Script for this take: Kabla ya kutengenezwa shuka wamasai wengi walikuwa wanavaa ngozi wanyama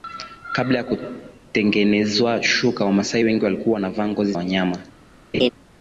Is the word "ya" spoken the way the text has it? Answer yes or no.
yes